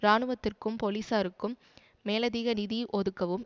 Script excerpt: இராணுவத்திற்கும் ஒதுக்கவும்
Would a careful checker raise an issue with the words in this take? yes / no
yes